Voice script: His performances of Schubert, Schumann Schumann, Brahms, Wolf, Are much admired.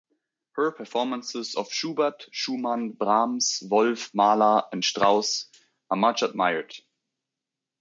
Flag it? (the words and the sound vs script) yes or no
yes